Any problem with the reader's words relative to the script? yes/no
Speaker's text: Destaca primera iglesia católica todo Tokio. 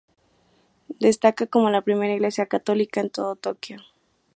yes